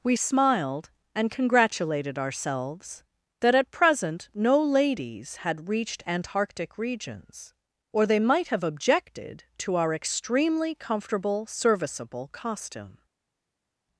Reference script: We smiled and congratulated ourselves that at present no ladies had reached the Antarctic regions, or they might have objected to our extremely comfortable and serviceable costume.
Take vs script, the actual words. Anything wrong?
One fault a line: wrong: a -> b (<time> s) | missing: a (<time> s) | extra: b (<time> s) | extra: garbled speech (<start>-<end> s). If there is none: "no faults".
missing: the (6.0 s)
missing: and (11.5 s)